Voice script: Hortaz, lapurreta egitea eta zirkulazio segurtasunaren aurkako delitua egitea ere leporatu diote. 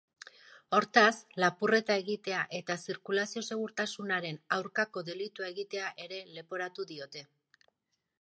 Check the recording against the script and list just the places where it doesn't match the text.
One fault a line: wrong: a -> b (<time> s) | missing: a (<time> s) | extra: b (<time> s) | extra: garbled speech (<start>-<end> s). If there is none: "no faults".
no faults